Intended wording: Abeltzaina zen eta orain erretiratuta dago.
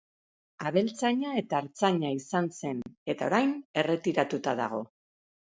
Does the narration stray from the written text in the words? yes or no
yes